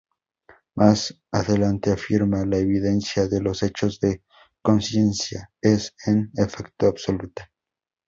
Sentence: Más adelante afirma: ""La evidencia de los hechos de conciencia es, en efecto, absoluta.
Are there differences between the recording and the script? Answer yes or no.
no